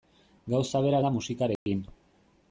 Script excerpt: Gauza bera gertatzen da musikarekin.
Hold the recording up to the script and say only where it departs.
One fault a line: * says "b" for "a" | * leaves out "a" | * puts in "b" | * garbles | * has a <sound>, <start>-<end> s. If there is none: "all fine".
* leaves out "gertatzen"
* has a dropout, 1.6-1.7 s